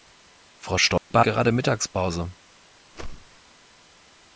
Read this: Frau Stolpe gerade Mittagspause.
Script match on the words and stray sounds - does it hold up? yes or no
no